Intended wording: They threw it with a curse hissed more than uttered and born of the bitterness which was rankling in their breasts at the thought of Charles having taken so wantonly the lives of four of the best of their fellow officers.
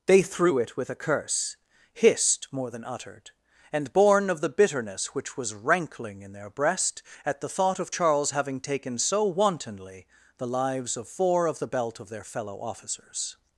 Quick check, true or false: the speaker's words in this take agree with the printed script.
false